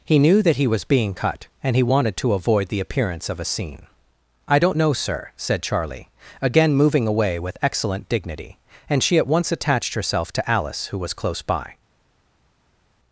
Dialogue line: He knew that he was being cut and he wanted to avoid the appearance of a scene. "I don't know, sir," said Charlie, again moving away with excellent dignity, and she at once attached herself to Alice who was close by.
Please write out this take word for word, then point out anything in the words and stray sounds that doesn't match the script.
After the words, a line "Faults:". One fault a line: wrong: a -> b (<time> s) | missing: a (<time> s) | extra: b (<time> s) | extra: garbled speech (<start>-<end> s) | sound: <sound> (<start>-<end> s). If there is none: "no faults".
He knew that he was being cut and he wanted to avoid the appearance of a scene. "I don't know, sir," said Charlie, again moving away with excellent dignity, and she at once attached herself to Alice who was close by.
Faults:
no faults